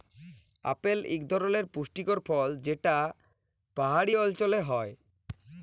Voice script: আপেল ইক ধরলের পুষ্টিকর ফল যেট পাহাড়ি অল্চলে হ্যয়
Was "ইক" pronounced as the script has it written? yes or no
yes